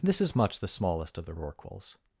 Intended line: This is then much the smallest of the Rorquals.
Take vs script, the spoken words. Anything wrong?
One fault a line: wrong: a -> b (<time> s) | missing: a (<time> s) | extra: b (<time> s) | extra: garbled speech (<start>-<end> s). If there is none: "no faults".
missing: then (0.3 s)